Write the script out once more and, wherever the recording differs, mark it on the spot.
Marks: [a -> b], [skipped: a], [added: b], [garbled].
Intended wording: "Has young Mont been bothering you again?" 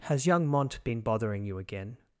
"Has young Mont been bothering you again?"